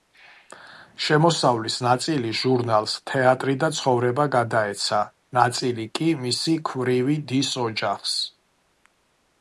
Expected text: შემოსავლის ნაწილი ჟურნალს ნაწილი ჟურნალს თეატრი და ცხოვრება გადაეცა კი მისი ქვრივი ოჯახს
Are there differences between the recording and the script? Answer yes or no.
yes